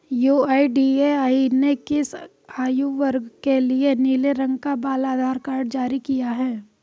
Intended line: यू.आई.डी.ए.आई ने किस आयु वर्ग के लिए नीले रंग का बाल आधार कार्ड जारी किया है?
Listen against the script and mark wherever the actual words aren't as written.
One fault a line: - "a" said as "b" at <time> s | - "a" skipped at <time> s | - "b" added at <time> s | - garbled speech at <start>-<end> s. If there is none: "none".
none